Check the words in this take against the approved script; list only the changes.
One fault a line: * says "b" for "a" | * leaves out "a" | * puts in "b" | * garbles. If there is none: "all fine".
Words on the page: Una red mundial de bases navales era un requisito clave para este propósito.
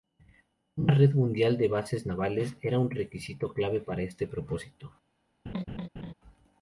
all fine